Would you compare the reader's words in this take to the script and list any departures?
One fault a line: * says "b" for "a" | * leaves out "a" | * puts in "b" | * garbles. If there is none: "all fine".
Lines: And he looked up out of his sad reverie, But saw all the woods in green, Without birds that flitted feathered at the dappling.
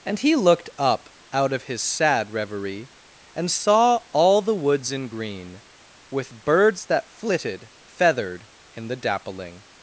* says "And" for "But"
* says "With" for "Without"
* says "in" for "at"